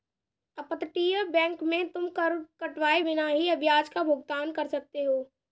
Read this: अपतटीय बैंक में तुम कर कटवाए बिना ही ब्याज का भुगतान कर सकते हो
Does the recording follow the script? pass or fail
pass